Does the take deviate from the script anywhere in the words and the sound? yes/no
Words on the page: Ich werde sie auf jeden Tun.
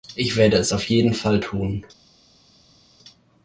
yes